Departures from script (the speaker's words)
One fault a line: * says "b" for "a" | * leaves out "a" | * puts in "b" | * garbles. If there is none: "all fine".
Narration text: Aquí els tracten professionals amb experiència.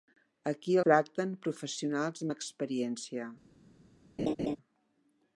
* leaves out "els"